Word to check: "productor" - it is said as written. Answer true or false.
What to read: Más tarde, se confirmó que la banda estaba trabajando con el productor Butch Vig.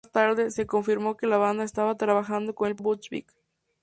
false